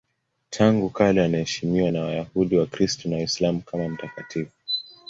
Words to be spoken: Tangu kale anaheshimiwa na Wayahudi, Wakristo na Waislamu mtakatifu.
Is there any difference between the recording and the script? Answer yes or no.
yes